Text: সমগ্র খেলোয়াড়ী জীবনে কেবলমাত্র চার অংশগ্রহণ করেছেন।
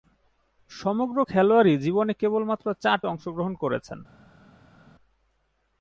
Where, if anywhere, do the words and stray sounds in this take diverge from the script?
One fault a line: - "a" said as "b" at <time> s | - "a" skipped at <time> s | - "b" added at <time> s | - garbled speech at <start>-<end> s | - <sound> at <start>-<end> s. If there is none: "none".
none